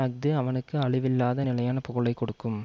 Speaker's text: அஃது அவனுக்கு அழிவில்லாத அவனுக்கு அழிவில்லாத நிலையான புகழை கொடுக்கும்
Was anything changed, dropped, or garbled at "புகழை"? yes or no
no